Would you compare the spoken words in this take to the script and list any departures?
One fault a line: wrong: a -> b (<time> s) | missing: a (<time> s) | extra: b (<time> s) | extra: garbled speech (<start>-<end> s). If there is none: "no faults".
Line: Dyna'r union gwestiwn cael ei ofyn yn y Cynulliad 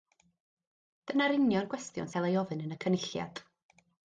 no faults